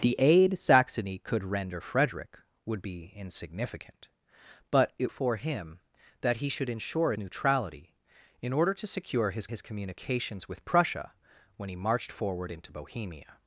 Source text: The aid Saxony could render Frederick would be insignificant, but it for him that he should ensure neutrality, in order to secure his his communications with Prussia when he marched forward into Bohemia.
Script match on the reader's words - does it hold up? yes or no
yes